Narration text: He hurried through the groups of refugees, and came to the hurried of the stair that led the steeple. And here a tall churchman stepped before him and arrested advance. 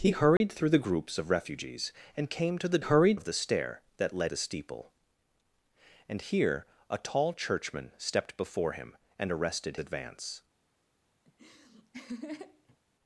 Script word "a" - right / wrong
right